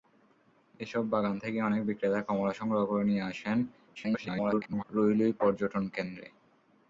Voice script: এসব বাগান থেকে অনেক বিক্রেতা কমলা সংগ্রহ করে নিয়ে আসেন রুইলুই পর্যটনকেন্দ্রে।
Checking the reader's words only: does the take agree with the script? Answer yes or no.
no